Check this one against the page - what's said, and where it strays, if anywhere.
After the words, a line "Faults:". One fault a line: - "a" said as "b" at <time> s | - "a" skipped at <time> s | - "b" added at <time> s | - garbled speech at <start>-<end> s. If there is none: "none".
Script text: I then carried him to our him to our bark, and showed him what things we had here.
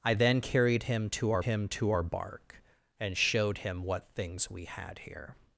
I then carried him to our him to our bark, and showed him what things we had here.
Faults:
none